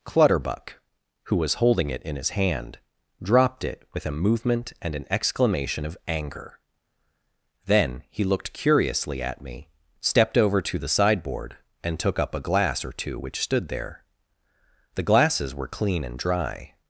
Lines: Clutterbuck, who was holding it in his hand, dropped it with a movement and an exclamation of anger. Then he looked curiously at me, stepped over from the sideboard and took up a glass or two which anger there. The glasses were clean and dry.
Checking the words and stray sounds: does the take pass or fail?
fail